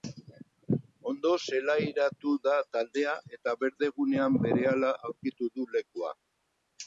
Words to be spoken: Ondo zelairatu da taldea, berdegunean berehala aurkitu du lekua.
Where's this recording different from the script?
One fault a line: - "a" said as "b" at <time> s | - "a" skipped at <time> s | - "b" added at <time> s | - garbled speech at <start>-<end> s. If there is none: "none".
- "eta" added at 3.4 s